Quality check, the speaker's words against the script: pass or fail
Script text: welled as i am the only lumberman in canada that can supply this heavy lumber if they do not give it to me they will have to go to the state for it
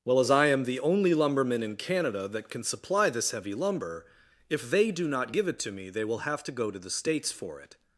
fail